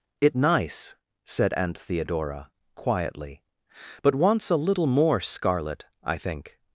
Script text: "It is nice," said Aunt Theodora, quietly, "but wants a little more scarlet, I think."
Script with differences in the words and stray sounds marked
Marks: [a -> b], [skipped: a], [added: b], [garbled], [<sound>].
"It [skipped: is] nice," said Aunt Theodora, quietly, "but wants a little more scarlet, I think."